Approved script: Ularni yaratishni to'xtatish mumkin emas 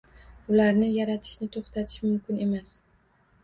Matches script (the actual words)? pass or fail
pass